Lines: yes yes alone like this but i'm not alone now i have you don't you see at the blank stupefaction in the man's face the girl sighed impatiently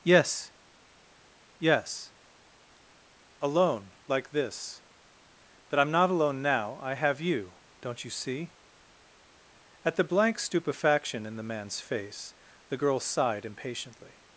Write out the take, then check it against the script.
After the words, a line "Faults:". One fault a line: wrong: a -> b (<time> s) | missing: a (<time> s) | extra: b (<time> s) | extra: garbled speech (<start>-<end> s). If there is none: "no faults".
yes yes alone like this but i'm not alone now i have you don't you see at the blank stupefaction in the man's face the girl sighed impatiently
Faults:
no faults